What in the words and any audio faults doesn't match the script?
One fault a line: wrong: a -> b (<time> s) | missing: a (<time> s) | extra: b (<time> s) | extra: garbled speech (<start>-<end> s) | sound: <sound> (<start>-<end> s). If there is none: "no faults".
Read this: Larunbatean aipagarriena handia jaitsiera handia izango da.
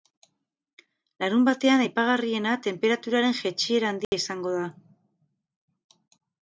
wrong: handia -> tenperaturaren (2.7 s)
sound: dropout (4.0-4.1 s)